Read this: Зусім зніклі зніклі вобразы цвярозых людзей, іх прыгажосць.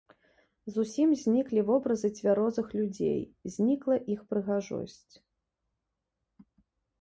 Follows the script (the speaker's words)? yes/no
no